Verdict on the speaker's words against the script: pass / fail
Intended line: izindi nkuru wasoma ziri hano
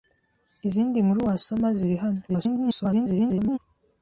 fail